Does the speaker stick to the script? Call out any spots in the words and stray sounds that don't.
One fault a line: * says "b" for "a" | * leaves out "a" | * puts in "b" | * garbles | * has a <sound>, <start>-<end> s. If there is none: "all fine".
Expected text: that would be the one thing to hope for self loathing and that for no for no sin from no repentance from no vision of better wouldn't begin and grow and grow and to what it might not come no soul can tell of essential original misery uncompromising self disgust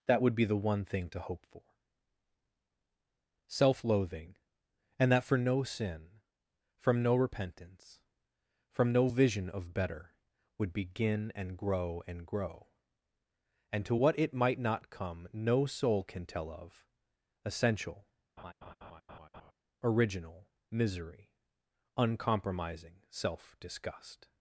* leaves out "for no"
* says "would" for "wouldn't"
* has a laugh, 18.4-19.5 s